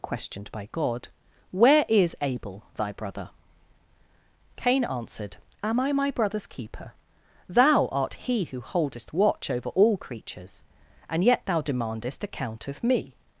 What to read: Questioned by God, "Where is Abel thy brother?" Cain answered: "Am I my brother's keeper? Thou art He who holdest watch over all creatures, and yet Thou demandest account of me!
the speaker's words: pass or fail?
pass